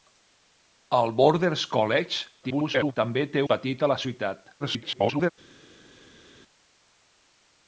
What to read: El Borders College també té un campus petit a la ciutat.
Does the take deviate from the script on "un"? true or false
true